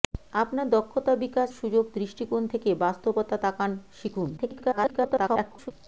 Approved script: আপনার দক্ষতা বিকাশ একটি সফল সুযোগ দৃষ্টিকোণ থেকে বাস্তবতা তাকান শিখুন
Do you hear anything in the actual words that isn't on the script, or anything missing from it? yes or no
yes